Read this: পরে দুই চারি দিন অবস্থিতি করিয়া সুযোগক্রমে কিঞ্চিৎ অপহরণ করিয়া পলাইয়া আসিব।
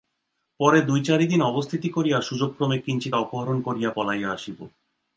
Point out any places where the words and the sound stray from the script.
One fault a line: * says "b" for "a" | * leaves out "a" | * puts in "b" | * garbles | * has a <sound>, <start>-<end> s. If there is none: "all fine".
all fine